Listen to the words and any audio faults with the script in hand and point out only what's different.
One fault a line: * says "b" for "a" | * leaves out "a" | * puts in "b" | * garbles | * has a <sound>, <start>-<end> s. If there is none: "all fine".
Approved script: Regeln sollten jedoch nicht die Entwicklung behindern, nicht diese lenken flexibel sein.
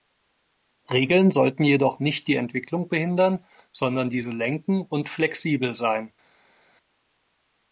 * says "sondern" for "nicht"
* puts in "und"